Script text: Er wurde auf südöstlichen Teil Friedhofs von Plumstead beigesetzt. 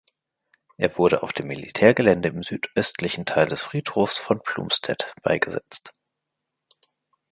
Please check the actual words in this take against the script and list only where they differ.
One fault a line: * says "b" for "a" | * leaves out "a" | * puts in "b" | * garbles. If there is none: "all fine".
* puts in "dem Militärgelände im"
* puts in "des"